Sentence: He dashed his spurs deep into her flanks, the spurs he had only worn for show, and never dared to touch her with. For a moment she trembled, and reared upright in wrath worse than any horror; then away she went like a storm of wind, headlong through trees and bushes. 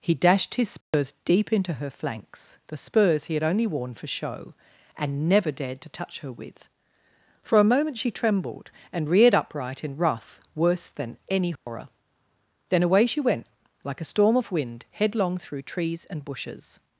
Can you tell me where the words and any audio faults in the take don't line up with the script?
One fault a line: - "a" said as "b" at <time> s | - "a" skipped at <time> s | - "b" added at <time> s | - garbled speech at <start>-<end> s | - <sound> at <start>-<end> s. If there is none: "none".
- dropout at 0.8-0.9 s
- dropout at 11.6-11.7 s